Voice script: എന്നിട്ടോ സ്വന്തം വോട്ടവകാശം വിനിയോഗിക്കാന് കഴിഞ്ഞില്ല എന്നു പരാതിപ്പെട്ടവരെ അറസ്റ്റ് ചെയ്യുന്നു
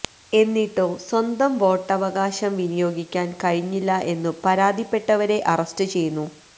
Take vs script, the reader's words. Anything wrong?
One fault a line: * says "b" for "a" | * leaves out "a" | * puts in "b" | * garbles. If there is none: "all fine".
all fine